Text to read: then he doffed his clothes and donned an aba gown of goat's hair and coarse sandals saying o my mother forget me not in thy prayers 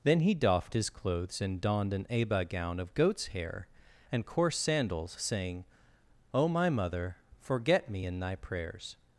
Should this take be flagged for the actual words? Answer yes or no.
yes